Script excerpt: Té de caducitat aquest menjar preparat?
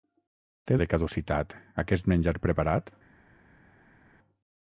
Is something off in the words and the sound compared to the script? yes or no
no